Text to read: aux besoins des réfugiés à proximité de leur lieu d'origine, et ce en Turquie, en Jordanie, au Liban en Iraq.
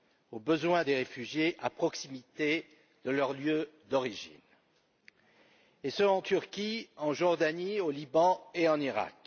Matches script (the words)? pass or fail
fail